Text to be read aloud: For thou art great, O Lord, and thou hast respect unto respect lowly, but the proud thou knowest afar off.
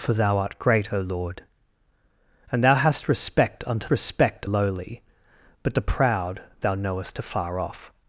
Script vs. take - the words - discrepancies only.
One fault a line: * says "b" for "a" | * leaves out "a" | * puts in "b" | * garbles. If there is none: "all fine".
all fine